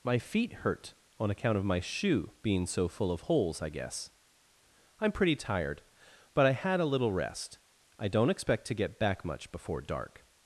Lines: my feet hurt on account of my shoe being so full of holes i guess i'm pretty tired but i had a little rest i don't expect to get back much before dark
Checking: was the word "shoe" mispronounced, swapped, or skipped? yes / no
no